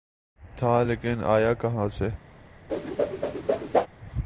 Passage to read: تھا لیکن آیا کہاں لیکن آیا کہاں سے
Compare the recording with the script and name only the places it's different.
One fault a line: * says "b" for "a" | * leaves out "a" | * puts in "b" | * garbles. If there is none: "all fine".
* leaves out "لیکن آیا کہاں"